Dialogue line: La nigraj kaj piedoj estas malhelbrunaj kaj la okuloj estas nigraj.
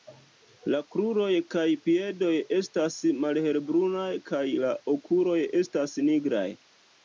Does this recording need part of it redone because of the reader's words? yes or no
yes